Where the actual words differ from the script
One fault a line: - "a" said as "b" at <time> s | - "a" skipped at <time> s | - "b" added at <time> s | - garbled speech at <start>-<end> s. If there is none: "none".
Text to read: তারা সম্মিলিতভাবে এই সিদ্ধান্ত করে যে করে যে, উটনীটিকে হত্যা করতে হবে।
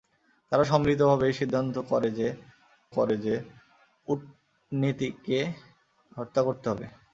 none